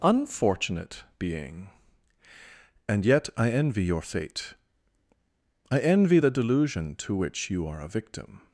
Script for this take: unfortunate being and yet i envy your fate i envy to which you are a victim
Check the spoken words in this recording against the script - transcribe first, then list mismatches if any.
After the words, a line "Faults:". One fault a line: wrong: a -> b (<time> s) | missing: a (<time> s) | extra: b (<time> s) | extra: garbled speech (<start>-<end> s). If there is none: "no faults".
unfortunate being and yet i envy your fate i envy the delusion to which you are a victim
Faults:
extra: the delusion (6.2 s)